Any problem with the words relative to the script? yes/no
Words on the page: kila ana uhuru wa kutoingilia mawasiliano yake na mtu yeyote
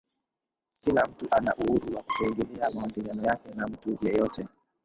yes